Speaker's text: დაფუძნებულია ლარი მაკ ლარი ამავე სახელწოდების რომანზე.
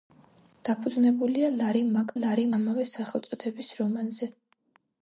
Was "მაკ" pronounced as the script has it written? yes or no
yes